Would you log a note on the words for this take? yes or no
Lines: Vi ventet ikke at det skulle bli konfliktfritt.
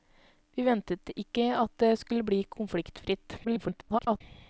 yes